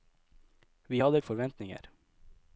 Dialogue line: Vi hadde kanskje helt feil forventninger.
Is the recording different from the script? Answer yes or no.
yes